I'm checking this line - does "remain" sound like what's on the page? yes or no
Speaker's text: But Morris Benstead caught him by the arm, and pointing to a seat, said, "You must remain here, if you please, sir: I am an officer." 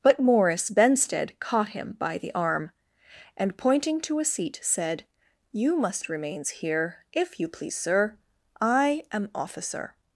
no